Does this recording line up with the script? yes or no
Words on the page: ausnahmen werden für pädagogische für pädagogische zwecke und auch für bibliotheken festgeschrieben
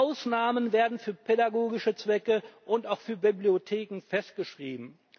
no